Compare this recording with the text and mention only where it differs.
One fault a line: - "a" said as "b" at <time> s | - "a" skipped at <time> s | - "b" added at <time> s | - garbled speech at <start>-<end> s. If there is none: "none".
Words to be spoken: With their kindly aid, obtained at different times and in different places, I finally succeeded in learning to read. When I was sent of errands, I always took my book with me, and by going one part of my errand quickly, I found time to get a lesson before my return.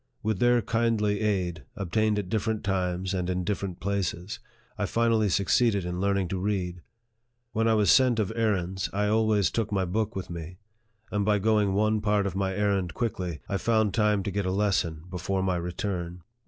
none